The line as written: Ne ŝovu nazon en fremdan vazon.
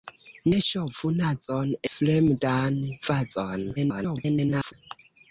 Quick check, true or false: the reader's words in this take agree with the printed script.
false